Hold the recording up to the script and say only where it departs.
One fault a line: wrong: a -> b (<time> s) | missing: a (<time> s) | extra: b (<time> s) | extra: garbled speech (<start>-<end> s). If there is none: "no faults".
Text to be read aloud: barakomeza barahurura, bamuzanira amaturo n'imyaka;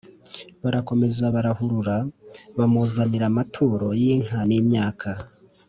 extra: y'inka (4.0 s)